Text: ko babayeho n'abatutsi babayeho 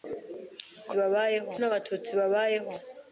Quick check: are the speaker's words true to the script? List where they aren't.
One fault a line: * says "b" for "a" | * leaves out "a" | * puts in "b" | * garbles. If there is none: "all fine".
all fine